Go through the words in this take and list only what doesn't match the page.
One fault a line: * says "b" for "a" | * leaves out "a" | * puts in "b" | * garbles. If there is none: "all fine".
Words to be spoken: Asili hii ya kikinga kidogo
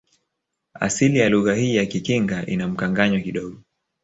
* puts in "ya lugha"
* puts in "ina mkanganyo"